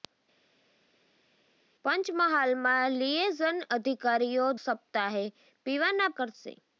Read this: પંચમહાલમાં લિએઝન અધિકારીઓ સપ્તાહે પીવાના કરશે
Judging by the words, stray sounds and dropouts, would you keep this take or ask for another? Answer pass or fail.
pass